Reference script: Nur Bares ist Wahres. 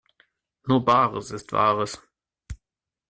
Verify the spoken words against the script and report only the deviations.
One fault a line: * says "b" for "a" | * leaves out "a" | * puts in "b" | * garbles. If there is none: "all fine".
all fine